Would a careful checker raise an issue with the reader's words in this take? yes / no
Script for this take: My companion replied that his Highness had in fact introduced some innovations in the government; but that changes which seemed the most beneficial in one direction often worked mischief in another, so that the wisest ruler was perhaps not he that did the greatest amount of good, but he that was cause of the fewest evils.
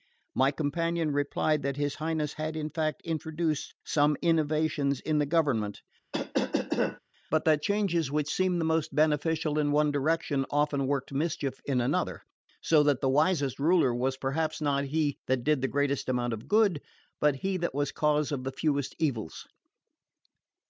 no